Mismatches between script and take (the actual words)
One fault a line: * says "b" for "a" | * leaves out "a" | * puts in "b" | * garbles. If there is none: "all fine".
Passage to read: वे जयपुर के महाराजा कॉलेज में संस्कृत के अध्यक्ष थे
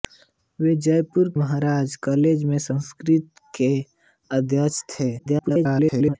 * leaves out "के"
* garbles